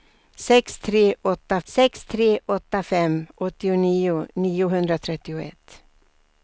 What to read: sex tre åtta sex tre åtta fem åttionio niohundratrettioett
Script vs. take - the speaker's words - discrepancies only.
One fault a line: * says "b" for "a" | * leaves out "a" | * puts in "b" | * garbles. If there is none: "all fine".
all fine